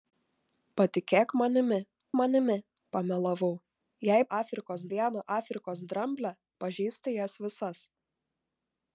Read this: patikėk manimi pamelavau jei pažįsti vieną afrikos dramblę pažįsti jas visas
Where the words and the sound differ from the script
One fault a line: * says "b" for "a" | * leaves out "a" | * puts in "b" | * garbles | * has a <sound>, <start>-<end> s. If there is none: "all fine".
* puts in "manimi"
* says "afrikos" for "pažįsti"